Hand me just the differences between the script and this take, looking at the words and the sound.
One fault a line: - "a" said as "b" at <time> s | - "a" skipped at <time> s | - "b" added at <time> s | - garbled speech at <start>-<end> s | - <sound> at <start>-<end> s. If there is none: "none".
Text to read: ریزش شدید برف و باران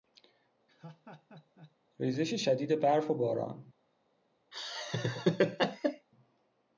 - laugh at 0.7-1.8 s
- laugh at 4.5-6.1 s